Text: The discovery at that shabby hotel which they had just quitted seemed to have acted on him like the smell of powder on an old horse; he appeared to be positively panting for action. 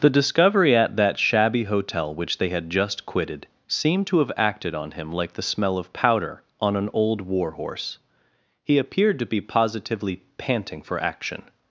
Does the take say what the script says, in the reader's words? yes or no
no